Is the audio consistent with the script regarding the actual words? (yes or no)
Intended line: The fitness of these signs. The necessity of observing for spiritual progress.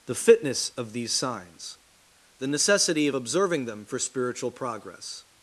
no